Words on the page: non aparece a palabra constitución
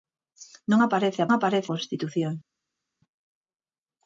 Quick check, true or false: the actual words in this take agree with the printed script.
false